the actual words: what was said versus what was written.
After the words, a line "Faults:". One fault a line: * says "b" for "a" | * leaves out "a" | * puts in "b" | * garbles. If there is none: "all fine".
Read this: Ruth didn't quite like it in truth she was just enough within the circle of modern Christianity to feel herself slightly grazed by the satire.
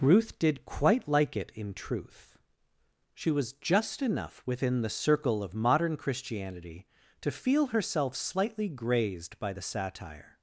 Ruth did quite like it in truth she was just enough within the circle of modern Christianity to feel herself slightly grazed by the satire.
Faults:
* says "did" for "didn't"